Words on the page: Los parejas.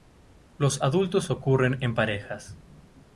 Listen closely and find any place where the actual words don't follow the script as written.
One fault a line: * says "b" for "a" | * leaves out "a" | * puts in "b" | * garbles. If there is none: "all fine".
* puts in "adultos ocurren en"